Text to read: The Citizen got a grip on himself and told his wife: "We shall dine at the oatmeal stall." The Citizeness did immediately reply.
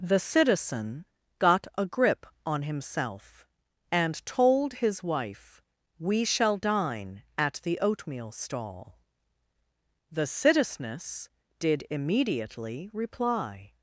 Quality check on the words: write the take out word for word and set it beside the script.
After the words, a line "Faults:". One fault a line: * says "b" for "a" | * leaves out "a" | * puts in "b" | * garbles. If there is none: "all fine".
The Citizen got a grip on himself and told his wife: "We shall dine at the oatmeal stall." The Citizeness did immediately reply.
Faults:
all fine